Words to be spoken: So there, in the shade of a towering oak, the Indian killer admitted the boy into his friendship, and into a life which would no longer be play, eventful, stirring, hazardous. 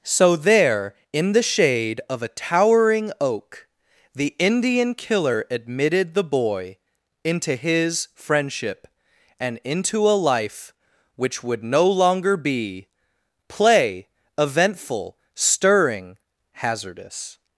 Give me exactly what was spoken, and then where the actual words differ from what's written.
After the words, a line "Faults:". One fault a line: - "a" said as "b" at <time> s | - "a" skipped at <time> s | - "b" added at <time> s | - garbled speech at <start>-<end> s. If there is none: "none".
So there, in the shade of a towering oak, the Indian killer admitted the boy into his friendship, and into a life which would no longer be play, eventful, stirring, hazardous.
Faults:
none